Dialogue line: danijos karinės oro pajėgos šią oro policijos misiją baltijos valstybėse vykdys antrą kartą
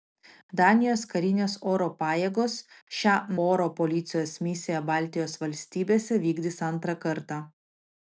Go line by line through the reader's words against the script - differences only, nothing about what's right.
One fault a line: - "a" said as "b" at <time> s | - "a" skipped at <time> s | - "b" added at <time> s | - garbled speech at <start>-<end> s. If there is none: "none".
none